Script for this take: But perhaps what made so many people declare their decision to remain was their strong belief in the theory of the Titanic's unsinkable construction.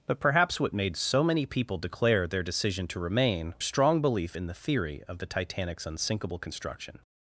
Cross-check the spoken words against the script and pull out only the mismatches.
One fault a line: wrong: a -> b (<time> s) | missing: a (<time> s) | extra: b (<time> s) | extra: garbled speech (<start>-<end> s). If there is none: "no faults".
missing: was their (3.5 s)